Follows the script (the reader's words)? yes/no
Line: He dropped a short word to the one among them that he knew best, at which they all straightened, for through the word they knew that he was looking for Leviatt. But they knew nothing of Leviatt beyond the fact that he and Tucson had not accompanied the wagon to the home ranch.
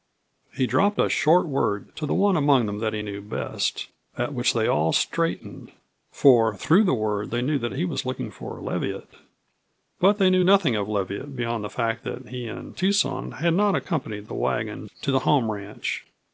yes